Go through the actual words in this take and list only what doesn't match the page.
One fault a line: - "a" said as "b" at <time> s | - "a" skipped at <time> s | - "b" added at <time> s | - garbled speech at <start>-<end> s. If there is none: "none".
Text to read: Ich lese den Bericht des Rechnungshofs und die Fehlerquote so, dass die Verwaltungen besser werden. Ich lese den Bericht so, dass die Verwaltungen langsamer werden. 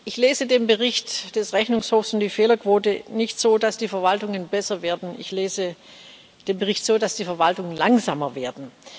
- "nicht" added at 3.1 s